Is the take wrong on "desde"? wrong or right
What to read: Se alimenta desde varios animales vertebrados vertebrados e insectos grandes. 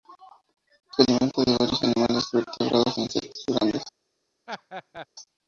wrong